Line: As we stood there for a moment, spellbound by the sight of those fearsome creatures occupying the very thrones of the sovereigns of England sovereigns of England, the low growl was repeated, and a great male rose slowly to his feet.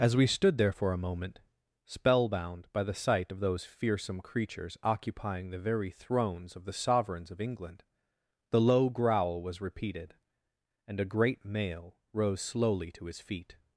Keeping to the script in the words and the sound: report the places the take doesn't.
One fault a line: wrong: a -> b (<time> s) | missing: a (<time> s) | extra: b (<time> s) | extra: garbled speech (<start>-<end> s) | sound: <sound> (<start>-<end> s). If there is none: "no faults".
missing: sovereigns of England (7.8 s)